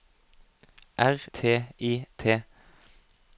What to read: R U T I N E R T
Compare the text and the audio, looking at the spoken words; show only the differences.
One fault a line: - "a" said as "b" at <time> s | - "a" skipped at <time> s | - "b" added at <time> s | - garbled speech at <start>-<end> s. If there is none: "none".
- "U" skipped at 1.2 s
- "N E R" skipped at 2.1 s